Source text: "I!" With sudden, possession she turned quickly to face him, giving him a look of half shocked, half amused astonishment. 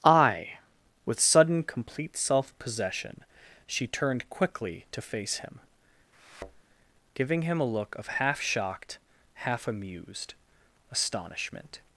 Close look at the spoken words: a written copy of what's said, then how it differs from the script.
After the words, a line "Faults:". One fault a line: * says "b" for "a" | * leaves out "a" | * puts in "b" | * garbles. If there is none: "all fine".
"I!" With sudden, complete self possession she turned quickly to face him, giving him a look of half shocked, half amused astonishment.
Faults:
* puts in "complete self"